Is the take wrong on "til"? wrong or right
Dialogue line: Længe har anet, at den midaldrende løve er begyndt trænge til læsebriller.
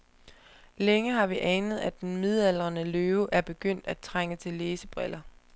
right